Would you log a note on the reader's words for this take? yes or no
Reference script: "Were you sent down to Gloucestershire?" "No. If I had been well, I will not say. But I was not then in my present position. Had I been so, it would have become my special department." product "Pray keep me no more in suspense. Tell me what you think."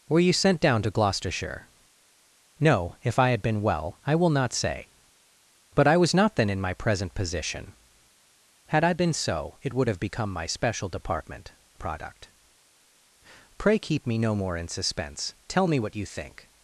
no